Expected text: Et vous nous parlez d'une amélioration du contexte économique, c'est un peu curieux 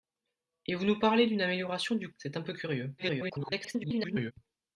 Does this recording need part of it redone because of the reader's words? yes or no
yes